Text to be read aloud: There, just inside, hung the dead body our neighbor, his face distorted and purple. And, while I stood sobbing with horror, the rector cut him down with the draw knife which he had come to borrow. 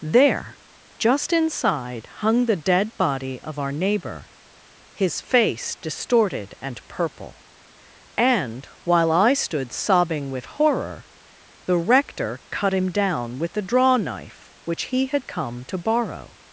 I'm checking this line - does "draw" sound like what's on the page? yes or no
yes